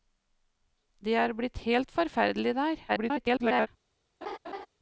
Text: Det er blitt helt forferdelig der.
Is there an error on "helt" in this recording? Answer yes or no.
no